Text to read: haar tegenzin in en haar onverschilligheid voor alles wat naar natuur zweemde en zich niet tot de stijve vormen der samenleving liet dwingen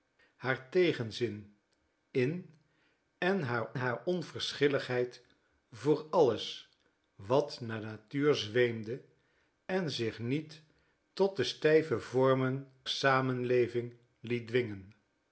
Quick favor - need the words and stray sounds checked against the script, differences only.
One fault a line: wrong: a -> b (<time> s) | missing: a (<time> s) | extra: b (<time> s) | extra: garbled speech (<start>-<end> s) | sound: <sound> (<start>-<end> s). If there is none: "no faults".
extra: haar (3.7 s)
missing: der (12.7 s)